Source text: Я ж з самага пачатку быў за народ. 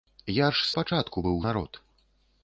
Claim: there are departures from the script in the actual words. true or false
true